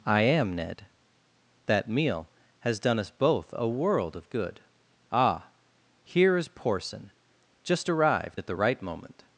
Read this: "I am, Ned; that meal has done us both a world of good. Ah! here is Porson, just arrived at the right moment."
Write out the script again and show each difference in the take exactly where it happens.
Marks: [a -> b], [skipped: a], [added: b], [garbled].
"I am, Ned; that meal has done us both a world of good. Ah! here is Porson, just arrived at the right moment."